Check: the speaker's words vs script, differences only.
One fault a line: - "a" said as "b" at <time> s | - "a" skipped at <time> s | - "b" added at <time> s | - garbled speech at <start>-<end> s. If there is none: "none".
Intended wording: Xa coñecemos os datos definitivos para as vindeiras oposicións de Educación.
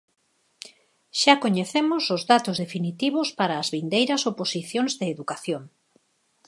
none